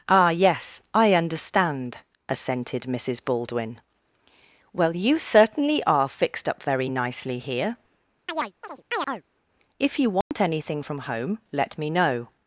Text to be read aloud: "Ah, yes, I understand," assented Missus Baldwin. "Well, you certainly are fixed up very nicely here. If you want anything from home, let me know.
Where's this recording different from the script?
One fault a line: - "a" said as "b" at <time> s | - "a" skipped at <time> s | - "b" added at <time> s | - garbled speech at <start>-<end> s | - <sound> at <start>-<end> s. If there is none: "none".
- chirp at 8.3-9.2 s
- dropout at 10.2-10.3 s